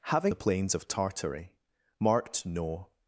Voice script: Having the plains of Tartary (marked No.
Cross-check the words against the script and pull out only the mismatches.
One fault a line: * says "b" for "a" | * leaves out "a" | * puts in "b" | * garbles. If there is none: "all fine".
all fine